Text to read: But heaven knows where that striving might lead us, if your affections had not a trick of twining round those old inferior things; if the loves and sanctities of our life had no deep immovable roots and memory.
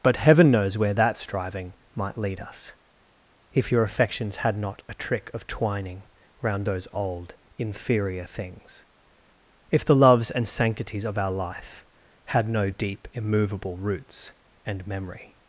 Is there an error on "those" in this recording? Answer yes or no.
no